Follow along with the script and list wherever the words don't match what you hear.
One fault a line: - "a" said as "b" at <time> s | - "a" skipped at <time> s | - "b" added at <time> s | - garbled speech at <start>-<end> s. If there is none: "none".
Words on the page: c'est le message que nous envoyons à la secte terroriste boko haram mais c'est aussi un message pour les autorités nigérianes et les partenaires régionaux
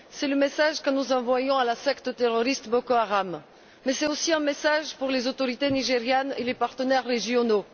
none